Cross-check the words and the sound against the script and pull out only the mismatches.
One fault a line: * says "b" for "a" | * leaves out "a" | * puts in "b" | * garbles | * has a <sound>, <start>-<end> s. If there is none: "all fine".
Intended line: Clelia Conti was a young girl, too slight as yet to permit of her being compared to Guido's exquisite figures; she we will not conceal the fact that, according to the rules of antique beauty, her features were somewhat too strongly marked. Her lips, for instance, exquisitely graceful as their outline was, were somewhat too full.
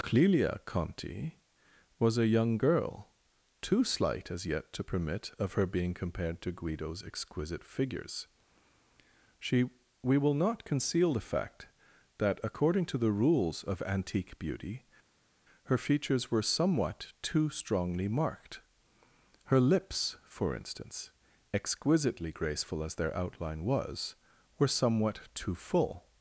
all fine